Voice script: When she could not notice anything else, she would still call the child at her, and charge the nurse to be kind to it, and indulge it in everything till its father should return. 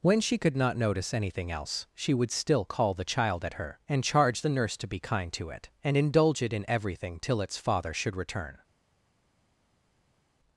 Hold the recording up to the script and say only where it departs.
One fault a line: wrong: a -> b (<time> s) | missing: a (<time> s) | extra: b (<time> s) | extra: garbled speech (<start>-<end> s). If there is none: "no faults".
no faults